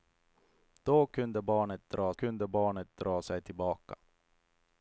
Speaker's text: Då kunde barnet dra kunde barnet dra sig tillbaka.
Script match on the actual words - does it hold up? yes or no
yes